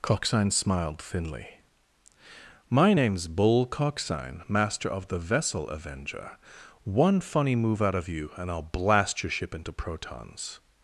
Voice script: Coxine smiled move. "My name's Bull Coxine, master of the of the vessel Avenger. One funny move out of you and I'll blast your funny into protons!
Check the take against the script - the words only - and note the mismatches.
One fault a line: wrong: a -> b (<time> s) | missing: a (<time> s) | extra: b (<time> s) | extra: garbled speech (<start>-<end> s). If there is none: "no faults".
wrong: move -> thinly (1.0 s)
missing: of the (5.2 s)
wrong: funny -> ship (9.3 s)